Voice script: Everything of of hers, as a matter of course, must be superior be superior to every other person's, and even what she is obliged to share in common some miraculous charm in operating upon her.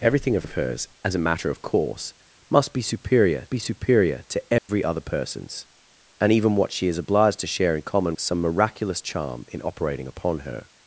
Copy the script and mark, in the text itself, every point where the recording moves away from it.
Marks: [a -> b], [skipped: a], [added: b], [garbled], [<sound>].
Everything of of hers, as a matter of course, must be superior be superior to every [dropout] other person's, and even what she is obliged to share in common some miraculous charm in operating upon her.